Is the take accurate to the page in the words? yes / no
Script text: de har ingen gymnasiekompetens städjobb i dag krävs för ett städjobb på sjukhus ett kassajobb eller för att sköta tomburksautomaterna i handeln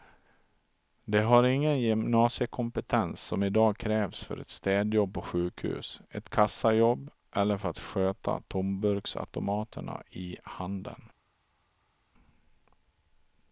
no